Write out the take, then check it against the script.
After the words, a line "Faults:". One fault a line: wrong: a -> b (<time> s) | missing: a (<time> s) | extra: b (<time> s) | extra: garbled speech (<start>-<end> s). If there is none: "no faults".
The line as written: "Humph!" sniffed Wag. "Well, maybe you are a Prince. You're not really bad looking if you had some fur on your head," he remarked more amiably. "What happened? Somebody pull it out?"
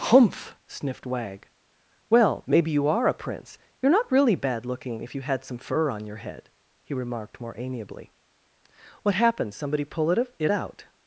"Humph!" sniffed Wag. "Well, maybe you are a Prince. You're not really bad looking if you had some fur on your head," he remarked more amiably. "What happened? Somebody pull it it out?"
Faults:
extra: it (10.4 s)